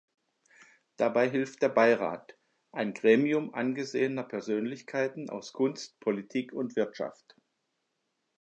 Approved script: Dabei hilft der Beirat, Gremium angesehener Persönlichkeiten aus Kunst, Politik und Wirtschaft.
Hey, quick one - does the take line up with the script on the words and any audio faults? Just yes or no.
no